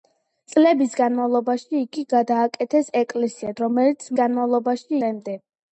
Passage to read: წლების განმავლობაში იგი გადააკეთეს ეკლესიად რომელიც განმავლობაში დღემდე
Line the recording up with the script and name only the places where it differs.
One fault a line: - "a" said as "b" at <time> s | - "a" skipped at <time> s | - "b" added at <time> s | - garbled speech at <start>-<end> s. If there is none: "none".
none